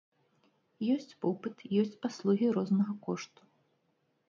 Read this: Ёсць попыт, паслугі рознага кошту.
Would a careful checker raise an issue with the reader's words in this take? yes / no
yes